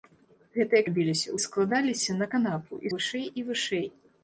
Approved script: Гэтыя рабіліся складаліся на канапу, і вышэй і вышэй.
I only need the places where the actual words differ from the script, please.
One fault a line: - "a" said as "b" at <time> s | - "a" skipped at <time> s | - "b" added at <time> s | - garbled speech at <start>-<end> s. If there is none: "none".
none